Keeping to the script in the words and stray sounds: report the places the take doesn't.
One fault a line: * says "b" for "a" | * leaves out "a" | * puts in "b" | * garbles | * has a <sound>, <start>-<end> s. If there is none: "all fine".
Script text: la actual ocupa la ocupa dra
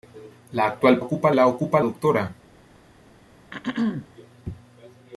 * has a throat clearing, 3.5-4.1 s